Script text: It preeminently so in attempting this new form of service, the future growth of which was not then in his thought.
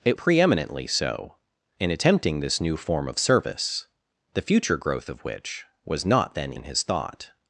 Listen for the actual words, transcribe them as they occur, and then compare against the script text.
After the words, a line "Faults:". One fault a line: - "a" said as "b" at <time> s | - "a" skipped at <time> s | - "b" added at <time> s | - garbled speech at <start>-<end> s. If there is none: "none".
It preeminently so in attempting this new form of service, the future growth of which was not then in his thought.
Faults:
none